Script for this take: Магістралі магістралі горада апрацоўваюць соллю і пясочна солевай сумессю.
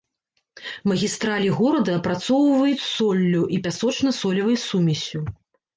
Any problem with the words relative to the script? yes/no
yes